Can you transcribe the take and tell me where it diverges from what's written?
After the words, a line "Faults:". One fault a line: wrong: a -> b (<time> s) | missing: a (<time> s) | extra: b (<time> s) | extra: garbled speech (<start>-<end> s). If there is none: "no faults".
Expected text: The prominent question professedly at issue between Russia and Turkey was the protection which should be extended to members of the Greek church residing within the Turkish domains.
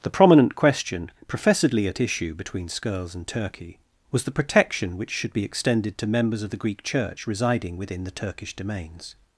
The prominent question professedly at issue between Skirls and Turkey was the protection which should be extended to members of the Greek church residing within the Turkish domains.
Faults:
wrong: Russia -> Skirls (2.7 s)